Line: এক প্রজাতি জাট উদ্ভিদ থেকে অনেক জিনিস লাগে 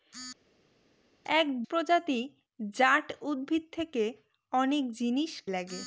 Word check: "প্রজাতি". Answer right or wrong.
right